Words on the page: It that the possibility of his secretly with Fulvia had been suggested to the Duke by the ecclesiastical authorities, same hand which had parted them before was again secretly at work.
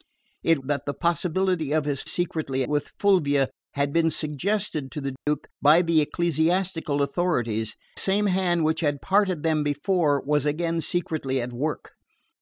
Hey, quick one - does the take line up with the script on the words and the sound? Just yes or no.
no